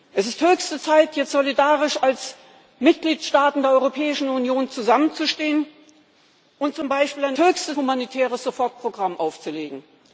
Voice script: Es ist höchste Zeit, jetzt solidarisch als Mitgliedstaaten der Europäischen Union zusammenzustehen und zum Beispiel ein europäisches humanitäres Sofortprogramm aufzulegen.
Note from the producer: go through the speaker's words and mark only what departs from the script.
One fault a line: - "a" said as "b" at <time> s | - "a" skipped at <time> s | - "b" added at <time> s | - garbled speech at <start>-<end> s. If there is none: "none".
- "europäisches" said as "höchste" at 7.4 s